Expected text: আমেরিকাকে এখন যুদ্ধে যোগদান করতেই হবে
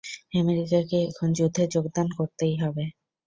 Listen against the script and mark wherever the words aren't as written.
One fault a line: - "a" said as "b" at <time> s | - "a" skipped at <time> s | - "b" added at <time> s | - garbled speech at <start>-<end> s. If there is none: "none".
none